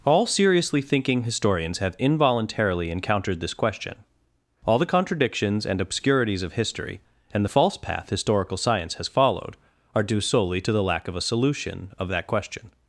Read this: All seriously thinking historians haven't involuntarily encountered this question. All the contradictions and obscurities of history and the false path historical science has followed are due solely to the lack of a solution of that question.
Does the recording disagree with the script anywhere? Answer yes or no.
yes